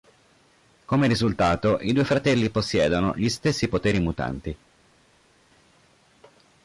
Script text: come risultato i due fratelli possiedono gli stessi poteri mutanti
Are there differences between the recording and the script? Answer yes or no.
no